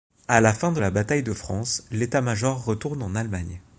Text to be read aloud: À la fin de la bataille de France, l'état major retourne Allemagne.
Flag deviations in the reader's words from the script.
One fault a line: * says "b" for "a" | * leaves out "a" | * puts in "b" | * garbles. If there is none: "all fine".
* puts in "en"